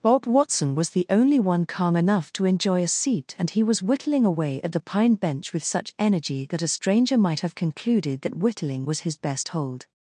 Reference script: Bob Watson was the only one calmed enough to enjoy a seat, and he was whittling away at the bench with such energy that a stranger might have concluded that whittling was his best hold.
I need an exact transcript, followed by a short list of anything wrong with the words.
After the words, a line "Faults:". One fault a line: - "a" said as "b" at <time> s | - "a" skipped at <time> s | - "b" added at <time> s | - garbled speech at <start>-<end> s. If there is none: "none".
Bob Watson was the only one calm enough to enjoy a seat, and he was whittling away at the pine bench with such energy that a stranger might have concluded that whittling was his best hold.
Faults:
- "calmed" said as "calm" at 1.7 s
- "pine" added at 4.8 s